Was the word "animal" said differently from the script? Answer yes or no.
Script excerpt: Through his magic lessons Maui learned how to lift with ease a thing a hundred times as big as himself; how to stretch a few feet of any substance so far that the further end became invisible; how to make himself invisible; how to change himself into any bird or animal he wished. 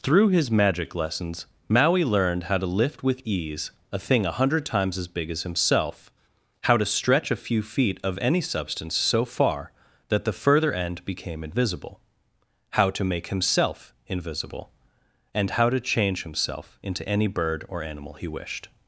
no